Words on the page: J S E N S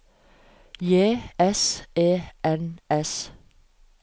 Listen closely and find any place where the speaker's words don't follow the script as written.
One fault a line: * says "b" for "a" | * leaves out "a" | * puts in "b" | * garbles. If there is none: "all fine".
all fine